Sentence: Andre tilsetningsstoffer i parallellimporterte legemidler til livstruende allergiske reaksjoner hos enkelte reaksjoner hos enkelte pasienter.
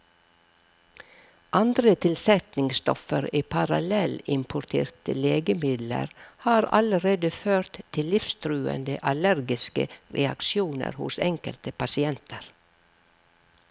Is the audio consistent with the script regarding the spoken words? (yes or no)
no